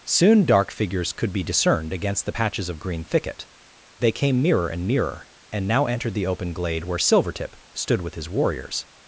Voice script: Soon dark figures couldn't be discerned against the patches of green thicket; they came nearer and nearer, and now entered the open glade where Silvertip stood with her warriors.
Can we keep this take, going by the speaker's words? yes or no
no